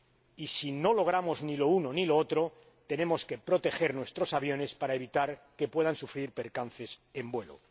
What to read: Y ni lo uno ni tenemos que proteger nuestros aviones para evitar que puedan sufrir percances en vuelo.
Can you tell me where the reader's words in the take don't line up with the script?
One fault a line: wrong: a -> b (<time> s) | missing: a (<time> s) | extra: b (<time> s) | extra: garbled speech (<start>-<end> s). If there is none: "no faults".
extra: si no logramos (0.5 s)
extra: lo otro (2.0 s)